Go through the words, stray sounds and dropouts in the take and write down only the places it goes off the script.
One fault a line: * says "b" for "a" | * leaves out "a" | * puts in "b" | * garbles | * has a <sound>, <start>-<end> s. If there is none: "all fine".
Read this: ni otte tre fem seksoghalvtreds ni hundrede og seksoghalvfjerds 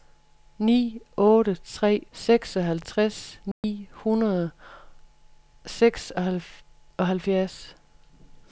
* leaves out "fem"
* has a dropout, 3.5-3.6 s